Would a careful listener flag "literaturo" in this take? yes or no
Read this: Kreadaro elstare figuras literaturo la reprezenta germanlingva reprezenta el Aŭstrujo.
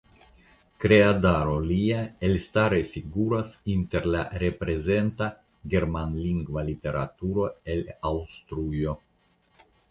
yes